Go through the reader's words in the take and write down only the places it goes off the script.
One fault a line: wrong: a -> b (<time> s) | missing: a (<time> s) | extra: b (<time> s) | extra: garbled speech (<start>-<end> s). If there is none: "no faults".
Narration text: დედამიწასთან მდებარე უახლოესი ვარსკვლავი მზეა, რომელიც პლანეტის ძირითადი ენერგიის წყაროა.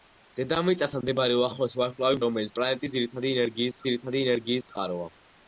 missing: მზეა (2.2 s)
extra: ძირითადი ენერგიის (3.9 s)